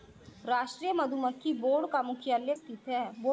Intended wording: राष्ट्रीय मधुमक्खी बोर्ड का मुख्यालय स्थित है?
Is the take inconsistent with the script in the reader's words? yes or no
no